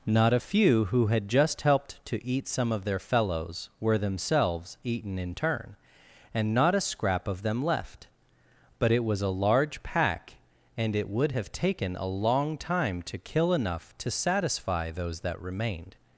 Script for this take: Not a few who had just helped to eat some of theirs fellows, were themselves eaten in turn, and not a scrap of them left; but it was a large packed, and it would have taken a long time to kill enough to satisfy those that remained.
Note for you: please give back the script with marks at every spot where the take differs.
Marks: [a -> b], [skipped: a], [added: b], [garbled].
Not a few who had just helped to eat some of [theirs -> their] fellows, were themselves eaten in turn, and not a scrap of them left; but it was a large [packed, -> pack] and it would have taken a long time to kill enough to satisfy those that remained.